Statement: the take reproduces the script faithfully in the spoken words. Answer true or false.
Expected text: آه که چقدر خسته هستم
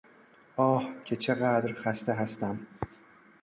true